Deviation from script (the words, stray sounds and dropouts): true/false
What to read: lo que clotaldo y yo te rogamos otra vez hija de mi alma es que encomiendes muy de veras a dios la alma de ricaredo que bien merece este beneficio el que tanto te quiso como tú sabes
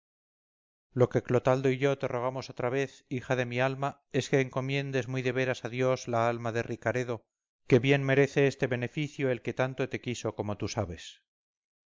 false